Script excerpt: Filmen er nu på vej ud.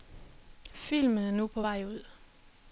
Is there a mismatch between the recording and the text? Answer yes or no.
no